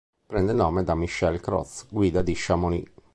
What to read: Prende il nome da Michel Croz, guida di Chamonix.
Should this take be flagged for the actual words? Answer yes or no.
no